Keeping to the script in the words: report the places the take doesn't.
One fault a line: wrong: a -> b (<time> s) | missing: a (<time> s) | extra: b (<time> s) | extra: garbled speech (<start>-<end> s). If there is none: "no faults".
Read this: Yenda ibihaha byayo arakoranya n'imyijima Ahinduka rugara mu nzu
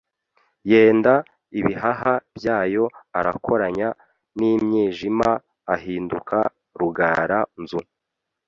missing: mu (7.4 s)